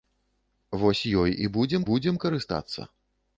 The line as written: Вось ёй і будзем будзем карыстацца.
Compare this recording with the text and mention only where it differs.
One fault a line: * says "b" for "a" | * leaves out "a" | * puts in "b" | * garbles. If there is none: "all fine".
all fine